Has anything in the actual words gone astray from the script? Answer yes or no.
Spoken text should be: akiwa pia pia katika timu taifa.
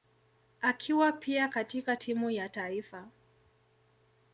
yes